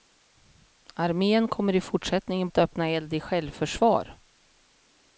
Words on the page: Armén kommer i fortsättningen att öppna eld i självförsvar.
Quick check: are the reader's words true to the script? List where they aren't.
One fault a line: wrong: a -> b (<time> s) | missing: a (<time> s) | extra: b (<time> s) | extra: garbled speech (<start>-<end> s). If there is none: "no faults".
no faults